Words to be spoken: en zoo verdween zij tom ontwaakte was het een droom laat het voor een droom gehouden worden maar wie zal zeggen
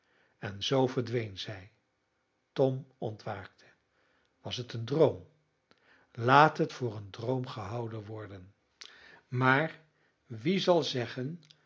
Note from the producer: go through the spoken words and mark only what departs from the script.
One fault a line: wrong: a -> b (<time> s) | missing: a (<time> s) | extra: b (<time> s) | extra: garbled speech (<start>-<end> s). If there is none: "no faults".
no faults